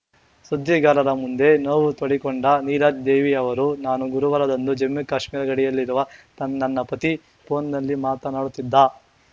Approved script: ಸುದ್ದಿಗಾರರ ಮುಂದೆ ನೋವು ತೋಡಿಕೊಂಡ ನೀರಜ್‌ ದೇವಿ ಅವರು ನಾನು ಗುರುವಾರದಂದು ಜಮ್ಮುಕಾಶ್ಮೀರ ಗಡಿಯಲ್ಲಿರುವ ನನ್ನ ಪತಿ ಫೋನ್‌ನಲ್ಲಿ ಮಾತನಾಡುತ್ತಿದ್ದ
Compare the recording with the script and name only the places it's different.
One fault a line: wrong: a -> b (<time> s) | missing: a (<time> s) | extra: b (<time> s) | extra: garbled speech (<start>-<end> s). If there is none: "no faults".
no faults